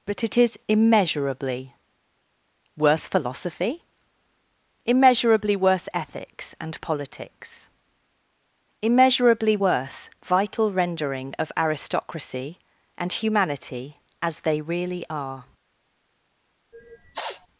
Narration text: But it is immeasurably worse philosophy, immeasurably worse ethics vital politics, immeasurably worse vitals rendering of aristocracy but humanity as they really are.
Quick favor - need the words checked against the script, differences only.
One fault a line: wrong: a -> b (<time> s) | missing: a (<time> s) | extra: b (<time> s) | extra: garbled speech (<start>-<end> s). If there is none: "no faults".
wrong: vital -> and (6.6 s)
wrong: vitals -> vital (10.2 s)
wrong: but -> and (13.0 s)